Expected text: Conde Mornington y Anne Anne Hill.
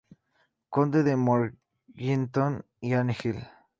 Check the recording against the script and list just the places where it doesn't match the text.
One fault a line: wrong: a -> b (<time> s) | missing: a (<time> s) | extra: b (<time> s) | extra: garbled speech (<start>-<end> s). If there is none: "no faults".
extra: de (1.0 s)
missing: Anne (3.2 s)